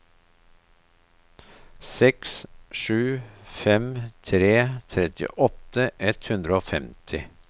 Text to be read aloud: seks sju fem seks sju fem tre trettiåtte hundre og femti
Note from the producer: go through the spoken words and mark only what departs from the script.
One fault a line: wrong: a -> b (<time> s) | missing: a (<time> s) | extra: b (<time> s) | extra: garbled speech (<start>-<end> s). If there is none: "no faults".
missing: seks sju fem (3.9 s)
extra: ett (6.1 s)